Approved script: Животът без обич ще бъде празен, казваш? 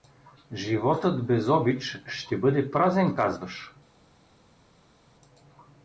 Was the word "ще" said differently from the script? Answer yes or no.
no